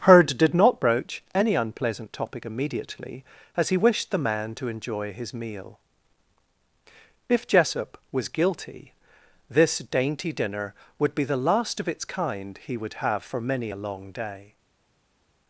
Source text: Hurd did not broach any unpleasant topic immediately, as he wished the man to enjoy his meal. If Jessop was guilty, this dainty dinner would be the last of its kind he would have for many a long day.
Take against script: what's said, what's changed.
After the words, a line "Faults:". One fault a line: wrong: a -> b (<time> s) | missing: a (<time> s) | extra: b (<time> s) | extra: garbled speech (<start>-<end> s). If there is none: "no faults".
Hurd did not broach any unpleasant topic immediately, as he wished the man to enjoy his meal. If Jessop was guilty, this dainty dinner would be the last of its kind he would have for many a long day.
Faults:
no faults